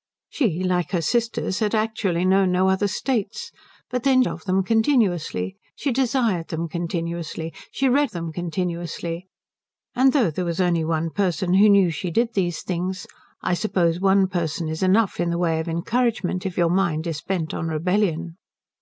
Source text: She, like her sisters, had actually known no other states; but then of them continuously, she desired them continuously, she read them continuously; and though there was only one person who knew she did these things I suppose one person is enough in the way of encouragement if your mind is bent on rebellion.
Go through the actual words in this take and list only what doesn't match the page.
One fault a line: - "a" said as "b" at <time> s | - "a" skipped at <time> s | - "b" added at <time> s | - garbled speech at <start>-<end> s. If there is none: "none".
none